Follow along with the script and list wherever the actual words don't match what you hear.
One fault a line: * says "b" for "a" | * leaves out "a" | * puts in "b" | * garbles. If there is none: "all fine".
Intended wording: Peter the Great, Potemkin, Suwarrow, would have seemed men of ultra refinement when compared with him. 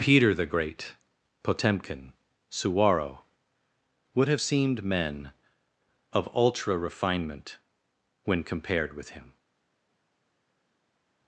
all fine